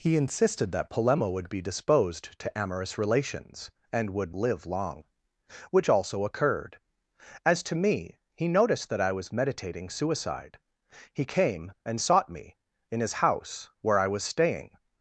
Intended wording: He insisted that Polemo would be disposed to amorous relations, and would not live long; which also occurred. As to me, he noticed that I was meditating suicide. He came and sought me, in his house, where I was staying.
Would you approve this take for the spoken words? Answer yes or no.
no